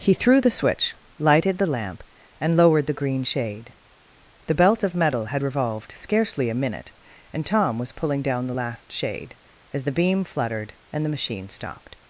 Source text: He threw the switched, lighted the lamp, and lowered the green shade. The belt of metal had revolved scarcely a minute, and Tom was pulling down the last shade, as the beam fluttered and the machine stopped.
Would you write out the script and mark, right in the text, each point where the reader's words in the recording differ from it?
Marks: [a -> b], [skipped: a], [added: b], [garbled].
He threw the [switched, -> switch] lighted the lamp, and lowered the green shade. The belt of metal had revolved scarcely a minute, and Tom was pulling down the last shade, as the beam fluttered and the machine stopped.